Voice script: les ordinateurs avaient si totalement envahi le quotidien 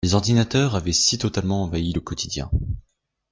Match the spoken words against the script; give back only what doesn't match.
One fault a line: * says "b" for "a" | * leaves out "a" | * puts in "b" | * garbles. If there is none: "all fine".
all fine